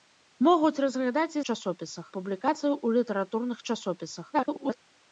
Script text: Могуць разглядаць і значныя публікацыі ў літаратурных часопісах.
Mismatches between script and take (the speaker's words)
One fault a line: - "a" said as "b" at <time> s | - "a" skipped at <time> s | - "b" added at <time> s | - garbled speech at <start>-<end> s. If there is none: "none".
- "значныя" said as "часопісах" at 1.5 s
- garbled speech at 4.3-4.8 s